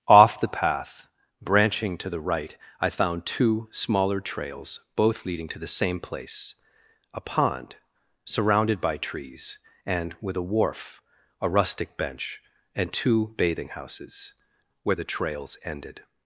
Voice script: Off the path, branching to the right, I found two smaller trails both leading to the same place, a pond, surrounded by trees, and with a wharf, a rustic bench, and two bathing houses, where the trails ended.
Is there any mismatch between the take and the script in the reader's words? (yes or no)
no